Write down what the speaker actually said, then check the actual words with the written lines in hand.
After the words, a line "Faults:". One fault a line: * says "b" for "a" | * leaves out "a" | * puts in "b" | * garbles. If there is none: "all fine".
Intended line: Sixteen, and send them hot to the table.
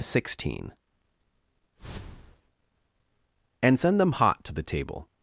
Sixteen, and send them hot to the table.
Faults:
all fine